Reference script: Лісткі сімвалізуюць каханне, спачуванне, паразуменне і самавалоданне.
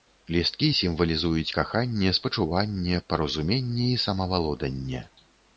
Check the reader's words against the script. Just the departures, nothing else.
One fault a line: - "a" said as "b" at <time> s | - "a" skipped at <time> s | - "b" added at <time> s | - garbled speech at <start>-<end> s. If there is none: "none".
none